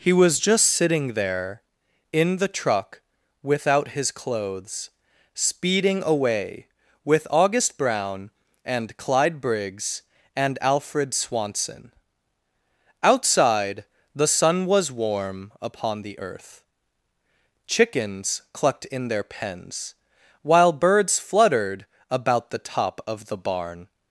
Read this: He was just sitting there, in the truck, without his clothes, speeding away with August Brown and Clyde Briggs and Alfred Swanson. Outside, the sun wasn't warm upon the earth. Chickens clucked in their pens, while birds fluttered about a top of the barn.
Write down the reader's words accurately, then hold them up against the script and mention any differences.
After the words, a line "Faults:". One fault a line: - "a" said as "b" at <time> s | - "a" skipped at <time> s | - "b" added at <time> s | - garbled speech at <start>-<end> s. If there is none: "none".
He was just sitting there, in the truck, without his clothes, speeding away with August Brown and Clyde Briggs and Alfred Swanson. Outside, the sun was warm upon the earth. Chickens clucked in their pens, while birds fluttered about the top of the barn.
Faults:
- "wasn't" said as "was" at 14.7 s
- "a" said as "the" at 22.5 s